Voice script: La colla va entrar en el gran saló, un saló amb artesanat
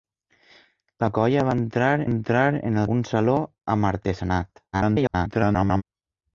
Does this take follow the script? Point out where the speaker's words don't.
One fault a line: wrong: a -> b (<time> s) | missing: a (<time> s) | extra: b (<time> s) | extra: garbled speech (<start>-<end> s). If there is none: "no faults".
extra: entrar (2.1 s)
missing: gran saló (2.9 s)
extra: garbled speech (4.7-5.8 s)